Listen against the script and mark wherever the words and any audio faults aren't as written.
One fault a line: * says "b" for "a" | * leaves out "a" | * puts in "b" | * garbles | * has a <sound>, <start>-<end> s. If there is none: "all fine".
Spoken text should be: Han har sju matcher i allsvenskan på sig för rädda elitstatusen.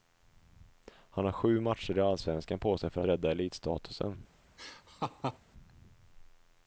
* has a laugh, 4.6-5.4 s